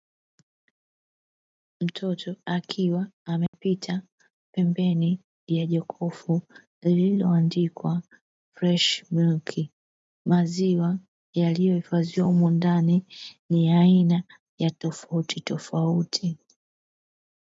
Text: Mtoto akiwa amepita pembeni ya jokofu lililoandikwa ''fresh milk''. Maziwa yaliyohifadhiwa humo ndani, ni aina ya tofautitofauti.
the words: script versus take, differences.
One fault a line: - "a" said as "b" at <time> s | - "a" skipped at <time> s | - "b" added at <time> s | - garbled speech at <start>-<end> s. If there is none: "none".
- "ya" added at 13.7 s